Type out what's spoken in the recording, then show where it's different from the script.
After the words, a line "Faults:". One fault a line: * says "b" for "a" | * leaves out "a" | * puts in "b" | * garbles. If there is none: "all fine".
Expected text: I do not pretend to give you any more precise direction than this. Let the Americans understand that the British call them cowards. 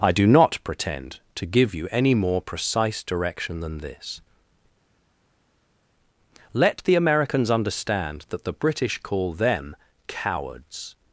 I do not pretend to give you any more precise direction than this. Let the Americans understand that the British call them cowards.
Faults:
all fine